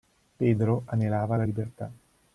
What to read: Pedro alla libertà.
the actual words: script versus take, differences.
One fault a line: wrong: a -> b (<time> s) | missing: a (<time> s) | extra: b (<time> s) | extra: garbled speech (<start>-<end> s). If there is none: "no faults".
extra: anelava (0.8 s)